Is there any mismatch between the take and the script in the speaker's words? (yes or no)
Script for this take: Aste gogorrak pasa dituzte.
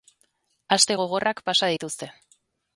no